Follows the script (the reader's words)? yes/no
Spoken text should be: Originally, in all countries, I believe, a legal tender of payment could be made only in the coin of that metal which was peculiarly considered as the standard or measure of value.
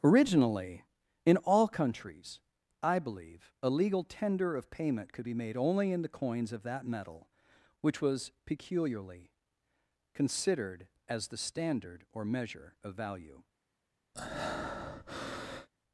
no